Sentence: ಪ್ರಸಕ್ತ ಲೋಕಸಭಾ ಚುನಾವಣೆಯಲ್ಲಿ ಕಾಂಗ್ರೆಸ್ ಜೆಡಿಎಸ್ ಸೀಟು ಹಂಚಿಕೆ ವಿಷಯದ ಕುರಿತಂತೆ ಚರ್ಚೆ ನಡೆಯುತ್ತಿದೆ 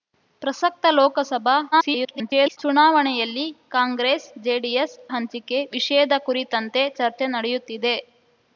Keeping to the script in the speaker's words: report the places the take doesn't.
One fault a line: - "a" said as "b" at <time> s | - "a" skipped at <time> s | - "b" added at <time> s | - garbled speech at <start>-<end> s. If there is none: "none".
- garbled speech at 1.7-2.6 s
- "ಸೀಟು" skipped at 5.0 s